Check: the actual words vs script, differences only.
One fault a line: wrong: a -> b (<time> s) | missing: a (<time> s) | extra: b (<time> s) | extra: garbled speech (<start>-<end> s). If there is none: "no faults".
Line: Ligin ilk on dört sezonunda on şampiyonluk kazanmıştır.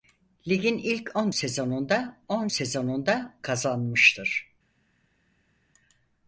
missing: dört (1.3 s)
wrong: şampiyonluk -> sezonunda (2.5 s)